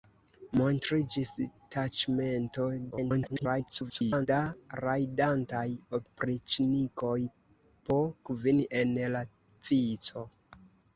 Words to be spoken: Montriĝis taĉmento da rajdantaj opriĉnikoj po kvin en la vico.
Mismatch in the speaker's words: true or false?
true